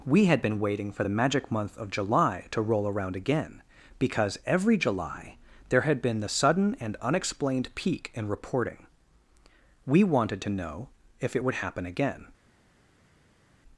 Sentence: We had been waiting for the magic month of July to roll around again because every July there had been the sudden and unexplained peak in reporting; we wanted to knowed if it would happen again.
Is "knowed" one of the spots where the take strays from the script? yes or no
yes